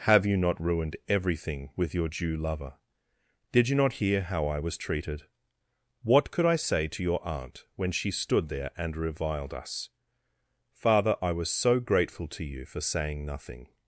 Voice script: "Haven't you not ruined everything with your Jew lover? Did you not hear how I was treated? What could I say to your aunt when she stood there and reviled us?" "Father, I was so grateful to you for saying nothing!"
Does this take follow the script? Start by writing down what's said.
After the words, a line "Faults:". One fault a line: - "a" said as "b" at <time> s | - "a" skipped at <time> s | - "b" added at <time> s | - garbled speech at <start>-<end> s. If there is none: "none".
"Have you not ruined everything with your Jew lover? Did you not hear how I was treated? What could I say to your aunt when she stood there and reviled us?" "Father, I was so grateful to you for saying nothing!"
Faults:
- "Haven't" said as "Have" at 0.1 s